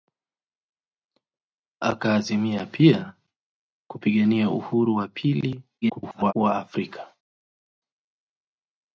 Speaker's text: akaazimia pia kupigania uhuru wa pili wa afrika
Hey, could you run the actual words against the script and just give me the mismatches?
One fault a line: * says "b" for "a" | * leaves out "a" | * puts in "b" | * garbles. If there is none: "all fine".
* garbles